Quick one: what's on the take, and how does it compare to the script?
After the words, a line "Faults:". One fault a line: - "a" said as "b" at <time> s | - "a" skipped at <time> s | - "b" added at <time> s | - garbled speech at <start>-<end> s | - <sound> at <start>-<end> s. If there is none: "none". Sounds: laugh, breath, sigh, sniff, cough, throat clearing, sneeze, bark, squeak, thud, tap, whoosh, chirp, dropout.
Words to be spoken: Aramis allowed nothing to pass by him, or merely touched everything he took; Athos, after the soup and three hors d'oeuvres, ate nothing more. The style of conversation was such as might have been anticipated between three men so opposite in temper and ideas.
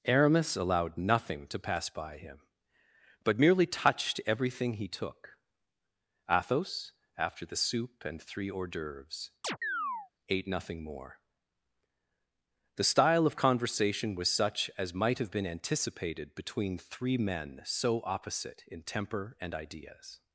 Aramis allowed nothing to pass by him, but merely touched everything he took; Athos, after the soup and three hors d'oeuvres, ate nothing more. The style of conversation was such as might have been anticipated between three men so opposite in temper and ideas.
Faults:
- "or" said as "but" at 3.2 s
- chirp at 9.4-10.1 s